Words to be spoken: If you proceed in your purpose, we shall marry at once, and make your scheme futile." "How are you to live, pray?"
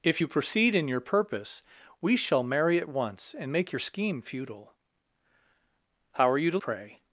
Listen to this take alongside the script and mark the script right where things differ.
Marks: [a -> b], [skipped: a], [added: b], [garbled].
If you proceed in your purpose, we shall marry at once, and make your scheme futile." "How are you to [skipped: live,] pray?"